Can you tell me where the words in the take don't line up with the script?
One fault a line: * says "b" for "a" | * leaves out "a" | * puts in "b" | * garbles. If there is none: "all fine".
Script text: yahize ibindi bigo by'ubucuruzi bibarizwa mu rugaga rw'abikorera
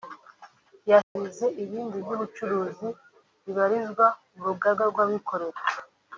* leaves out "bigo"